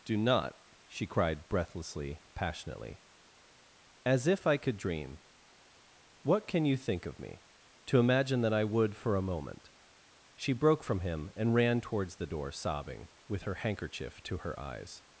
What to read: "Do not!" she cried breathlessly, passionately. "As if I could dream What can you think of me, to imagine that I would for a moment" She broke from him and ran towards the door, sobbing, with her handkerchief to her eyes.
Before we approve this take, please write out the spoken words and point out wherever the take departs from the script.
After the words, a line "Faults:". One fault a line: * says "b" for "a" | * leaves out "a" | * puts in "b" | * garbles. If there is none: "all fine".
"Do not!" she cried breathlessly, passionately. "As if I could dream What can you think of me, to imagine that I would for a moment" She broke from him and ran towards the door, sobbing, with her handkerchief to her eyes.
Faults:
all fine